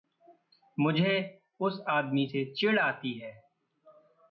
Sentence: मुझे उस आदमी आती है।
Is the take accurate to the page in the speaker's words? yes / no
no